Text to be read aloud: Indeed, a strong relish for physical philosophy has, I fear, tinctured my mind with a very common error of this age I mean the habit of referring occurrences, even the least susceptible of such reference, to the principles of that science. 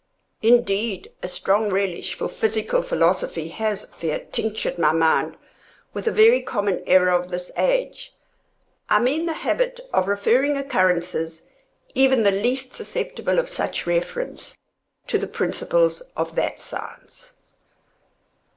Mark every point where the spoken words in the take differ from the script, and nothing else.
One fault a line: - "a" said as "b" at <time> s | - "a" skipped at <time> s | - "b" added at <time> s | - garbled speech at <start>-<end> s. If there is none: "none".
- "I" skipped at 3.9 s